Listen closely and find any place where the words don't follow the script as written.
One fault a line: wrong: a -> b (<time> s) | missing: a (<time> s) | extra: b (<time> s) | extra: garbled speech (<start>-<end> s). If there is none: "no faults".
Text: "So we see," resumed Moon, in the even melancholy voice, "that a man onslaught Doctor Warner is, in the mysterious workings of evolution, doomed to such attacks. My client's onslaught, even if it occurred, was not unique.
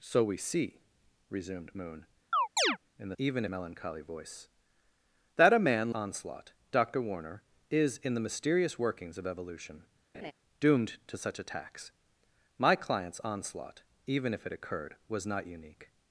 no faults